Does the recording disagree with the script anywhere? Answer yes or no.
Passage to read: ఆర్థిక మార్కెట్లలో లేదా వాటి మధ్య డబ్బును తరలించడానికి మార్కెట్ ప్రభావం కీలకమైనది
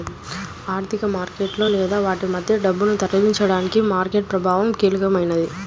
no